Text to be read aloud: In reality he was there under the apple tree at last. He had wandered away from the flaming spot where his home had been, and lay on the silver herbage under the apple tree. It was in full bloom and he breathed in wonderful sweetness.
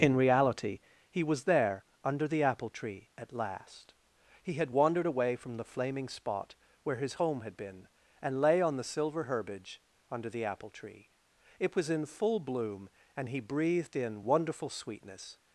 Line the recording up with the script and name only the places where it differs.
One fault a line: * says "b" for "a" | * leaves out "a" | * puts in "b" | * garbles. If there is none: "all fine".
all fine